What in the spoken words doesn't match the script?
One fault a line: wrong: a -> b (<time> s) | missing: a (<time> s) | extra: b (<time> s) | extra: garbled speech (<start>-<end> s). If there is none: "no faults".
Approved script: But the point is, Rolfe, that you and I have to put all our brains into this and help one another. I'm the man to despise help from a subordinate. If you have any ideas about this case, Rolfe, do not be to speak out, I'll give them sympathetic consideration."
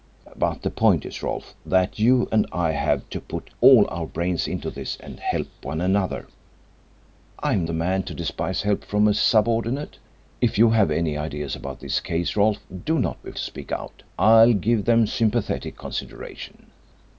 no faults